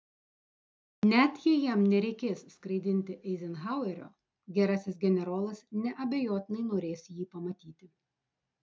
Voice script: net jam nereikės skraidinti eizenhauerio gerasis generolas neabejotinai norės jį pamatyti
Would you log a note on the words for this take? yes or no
yes